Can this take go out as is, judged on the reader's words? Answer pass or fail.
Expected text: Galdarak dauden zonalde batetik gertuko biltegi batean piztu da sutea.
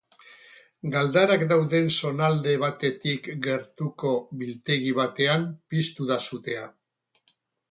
pass